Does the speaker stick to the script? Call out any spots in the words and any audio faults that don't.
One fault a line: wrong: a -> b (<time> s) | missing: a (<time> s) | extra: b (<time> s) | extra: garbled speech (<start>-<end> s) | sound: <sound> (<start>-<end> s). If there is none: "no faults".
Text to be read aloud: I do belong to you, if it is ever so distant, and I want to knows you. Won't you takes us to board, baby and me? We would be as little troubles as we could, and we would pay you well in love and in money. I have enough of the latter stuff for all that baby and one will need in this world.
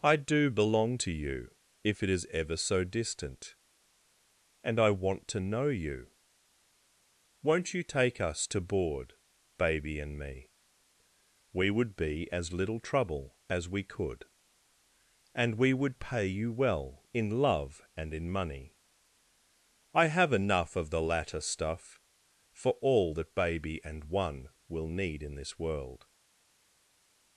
wrong: knows -> know (5.4 s)
wrong: takes -> take (7.8 s)
wrong: troubles -> trouble (12.8 s)